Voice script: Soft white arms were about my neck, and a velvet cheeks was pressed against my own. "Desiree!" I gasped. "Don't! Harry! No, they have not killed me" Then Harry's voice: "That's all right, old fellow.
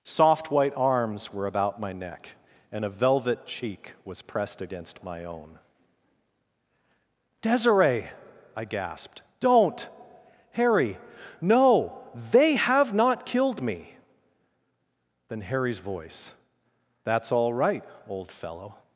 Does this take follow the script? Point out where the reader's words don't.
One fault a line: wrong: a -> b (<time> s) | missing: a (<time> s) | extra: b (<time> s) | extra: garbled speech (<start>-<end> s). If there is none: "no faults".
wrong: cheeks -> cheek (3.5 s)